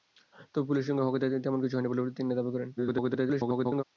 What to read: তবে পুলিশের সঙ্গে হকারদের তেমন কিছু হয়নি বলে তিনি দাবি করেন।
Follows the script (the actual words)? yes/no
no